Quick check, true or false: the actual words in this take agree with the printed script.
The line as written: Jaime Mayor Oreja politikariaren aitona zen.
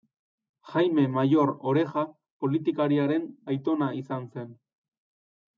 false